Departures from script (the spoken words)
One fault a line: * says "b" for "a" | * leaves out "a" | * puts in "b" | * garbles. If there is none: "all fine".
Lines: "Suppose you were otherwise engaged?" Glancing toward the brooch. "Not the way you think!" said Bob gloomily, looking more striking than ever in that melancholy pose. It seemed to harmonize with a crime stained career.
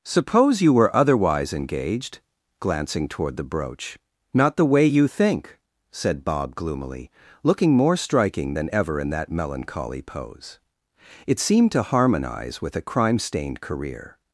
all fine